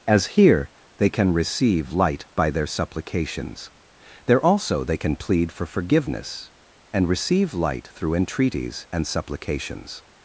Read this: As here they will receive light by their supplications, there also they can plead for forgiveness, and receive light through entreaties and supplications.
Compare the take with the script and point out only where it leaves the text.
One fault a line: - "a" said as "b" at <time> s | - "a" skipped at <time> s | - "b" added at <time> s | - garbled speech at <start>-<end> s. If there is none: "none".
- "will" said as "can" at 1.1 s